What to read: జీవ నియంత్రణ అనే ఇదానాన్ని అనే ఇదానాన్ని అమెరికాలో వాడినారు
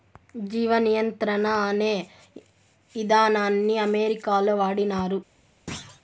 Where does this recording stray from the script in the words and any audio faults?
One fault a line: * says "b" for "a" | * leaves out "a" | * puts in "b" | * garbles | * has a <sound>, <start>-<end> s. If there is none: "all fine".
* leaves out "అనే ఇదానాన్ని"
* has a thud, 5.7-6.0 s